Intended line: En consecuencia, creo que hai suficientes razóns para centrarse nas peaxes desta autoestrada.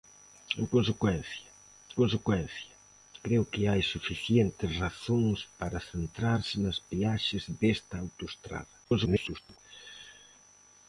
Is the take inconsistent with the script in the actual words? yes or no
yes